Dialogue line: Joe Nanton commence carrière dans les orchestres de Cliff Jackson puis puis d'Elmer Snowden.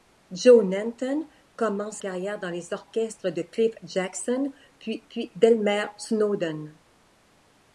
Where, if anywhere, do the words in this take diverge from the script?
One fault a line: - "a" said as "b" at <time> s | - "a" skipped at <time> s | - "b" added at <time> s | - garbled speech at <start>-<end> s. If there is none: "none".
none